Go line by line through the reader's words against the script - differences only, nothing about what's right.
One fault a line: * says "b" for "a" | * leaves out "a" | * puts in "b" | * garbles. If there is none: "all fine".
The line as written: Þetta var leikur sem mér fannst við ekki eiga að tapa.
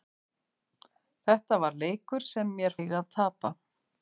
* leaves out "fannst við ekki"